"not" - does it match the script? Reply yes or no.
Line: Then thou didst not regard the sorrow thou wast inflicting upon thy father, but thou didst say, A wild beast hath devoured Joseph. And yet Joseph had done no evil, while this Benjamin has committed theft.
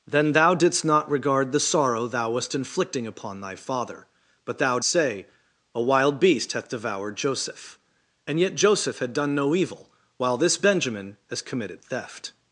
yes